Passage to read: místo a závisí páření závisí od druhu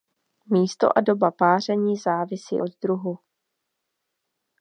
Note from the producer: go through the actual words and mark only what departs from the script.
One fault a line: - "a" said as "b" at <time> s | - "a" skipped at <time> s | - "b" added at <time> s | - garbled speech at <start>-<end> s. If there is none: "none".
- "závisí" said as "doba" at 1.0 s